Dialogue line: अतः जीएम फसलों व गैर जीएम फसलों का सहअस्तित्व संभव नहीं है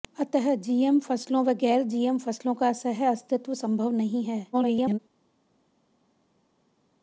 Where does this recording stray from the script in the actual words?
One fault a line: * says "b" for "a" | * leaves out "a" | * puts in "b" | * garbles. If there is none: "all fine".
* garbles